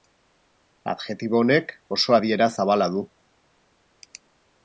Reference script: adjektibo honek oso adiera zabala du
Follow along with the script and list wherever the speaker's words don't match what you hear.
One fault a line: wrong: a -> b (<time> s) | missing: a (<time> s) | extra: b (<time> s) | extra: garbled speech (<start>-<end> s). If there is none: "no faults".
no faults